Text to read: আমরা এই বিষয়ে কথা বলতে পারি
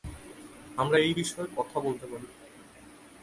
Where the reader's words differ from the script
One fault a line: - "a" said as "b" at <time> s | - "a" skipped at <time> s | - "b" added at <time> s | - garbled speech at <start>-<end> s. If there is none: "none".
none